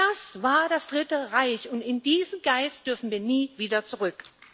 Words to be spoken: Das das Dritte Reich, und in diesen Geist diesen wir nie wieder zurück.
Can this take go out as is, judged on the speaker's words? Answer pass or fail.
fail